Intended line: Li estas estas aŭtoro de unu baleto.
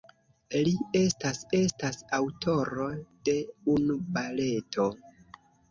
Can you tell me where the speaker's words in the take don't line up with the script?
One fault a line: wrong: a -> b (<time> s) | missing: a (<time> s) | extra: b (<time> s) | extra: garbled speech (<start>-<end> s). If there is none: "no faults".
no faults